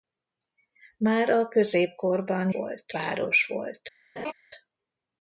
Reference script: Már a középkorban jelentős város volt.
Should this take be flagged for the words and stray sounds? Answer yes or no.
yes